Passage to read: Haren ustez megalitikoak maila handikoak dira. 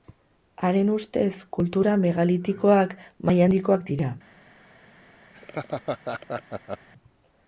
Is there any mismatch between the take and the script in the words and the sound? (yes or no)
yes